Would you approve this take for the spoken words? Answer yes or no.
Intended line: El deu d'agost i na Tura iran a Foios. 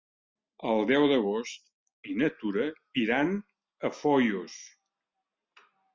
yes